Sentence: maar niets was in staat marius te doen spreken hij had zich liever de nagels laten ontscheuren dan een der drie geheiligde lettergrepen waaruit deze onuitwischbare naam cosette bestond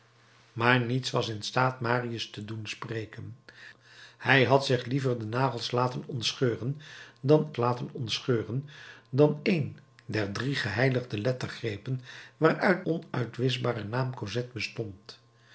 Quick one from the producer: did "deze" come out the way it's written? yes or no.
no